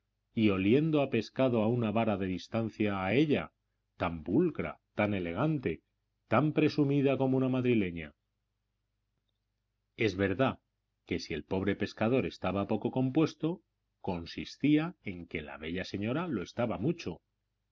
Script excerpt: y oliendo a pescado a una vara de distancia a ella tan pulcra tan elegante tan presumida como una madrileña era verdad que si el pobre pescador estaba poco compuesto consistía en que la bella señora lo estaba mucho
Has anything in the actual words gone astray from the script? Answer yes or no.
yes